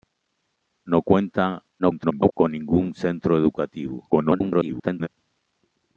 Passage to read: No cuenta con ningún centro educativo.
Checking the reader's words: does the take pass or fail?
fail